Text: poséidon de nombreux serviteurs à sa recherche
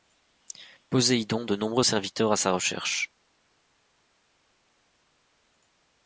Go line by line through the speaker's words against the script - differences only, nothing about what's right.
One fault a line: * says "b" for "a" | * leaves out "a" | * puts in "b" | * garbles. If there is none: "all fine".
all fine